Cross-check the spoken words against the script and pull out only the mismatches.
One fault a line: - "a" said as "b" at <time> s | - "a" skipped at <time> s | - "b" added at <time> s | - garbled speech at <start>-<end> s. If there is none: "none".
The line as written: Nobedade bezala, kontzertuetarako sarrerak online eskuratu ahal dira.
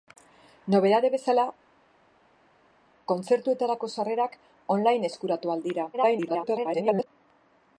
- garbled speech at 5.9-7.1 s